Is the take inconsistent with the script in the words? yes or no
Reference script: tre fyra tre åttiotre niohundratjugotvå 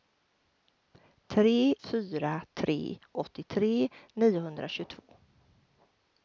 no